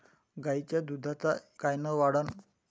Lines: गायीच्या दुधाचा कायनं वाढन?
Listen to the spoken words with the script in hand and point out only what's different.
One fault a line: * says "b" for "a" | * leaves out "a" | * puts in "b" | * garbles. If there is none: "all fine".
all fine